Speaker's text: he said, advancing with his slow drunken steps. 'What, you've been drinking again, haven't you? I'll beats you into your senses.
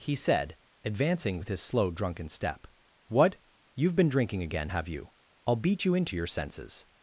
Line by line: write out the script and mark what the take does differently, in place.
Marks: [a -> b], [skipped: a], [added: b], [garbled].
he said, advancing with his slow drunken [steps. -> step] 'What, you've been drinking again, [haven't -> have] you? I'll [beats -> beat] you into your senses.